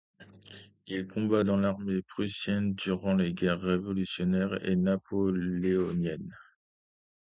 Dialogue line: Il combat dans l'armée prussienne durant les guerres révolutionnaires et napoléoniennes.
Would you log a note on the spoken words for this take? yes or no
no